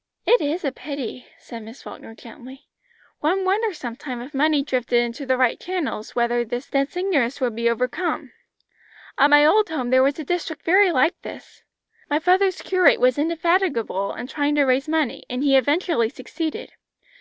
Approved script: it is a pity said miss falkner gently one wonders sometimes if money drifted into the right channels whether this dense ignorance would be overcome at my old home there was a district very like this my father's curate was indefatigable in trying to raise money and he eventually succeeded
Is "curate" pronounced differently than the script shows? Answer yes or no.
no